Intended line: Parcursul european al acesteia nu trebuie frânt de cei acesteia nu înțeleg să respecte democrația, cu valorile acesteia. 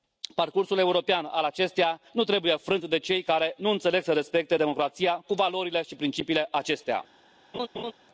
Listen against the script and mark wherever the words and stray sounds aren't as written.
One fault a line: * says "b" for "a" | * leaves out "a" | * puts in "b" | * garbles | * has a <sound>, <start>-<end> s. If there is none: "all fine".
* says "care" for "acesteia"
* puts in "și principiile"
* has a laugh, 7.5-7.9 s